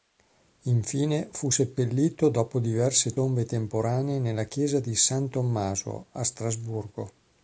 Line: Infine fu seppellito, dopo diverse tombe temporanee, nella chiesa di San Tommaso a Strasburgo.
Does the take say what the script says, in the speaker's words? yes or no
yes